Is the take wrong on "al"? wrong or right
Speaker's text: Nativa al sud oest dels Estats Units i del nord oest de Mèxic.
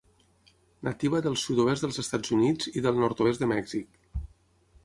wrong